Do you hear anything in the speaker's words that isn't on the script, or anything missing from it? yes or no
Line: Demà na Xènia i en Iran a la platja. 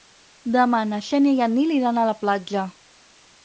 yes